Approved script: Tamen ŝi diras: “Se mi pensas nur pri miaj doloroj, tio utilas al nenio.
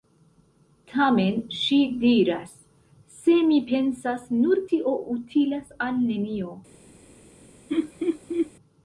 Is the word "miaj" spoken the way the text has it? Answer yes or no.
no